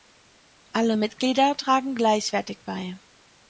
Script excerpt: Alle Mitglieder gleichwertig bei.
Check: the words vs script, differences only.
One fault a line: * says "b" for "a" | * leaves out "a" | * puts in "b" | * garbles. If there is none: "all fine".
* puts in "tragen"